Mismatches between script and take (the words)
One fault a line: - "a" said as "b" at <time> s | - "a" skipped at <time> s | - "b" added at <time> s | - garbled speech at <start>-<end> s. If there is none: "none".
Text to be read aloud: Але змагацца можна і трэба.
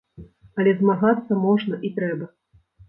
none